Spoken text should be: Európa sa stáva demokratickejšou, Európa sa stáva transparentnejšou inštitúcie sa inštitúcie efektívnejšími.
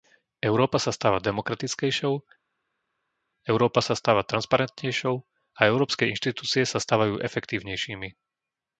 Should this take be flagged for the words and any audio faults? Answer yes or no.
yes